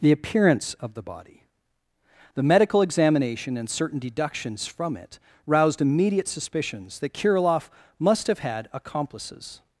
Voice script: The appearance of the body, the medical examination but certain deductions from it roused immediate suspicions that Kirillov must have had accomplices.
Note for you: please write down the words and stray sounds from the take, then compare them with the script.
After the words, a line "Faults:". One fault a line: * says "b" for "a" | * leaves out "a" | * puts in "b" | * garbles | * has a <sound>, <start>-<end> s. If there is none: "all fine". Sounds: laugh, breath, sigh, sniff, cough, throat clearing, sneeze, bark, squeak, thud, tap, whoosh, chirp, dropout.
The appearance of the body, the medical examination and certain deductions from it roused immediate suspicions that Kirillov must have had accomplices.
Faults:
* says "and" for "but"